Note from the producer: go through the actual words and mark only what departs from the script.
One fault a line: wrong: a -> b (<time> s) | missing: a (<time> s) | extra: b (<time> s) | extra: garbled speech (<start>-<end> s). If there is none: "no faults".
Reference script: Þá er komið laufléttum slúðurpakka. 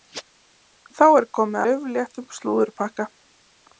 no faults